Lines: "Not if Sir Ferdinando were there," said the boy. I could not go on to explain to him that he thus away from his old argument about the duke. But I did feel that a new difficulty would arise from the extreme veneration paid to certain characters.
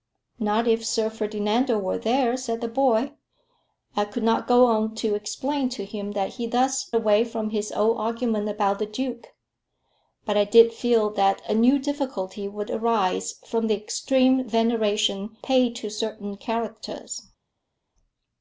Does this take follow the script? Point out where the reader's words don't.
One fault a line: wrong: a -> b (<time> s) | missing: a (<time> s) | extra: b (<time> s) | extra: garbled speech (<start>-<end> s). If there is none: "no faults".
no faults